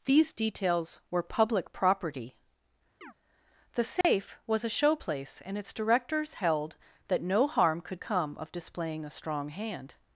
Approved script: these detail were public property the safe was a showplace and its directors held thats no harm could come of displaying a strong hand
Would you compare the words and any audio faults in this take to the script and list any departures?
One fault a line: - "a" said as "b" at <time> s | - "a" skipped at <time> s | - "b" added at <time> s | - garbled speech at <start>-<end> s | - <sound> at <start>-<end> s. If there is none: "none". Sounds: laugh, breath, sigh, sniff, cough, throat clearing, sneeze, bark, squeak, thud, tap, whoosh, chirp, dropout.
- "detail" said as "details" at 0.3 s
- chirp at 3.0-3.1 s
- dropout at 4.0-4.0 s
- "thats" said as "that" at 7.1 s